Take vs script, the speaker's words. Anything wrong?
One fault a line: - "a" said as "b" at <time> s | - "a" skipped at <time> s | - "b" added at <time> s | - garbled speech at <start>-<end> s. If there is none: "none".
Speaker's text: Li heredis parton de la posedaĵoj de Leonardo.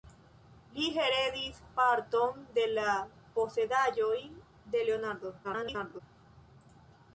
- garbled speech at 5.4-6.0 s